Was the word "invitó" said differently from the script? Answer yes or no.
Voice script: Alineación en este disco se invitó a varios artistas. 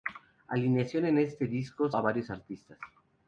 yes